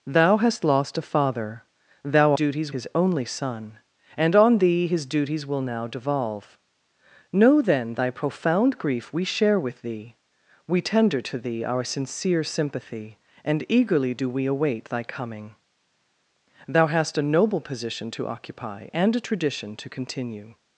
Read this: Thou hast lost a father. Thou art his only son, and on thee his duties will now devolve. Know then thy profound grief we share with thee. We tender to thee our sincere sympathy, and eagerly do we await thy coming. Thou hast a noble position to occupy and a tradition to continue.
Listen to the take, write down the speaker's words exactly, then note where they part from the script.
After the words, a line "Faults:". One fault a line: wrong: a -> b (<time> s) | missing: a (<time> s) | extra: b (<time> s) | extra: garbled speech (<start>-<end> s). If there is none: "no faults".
Thou hast lost a father. Thou duties his only son, and on thee his duties will now devolve. Know then thy profound grief we share with thee. We tender to thee our sincere sympathy, and eagerly do we await thy coming. Thou hast a noble position to occupy and a tradition to continue.
Faults:
wrong: art -> duties (2.3 s)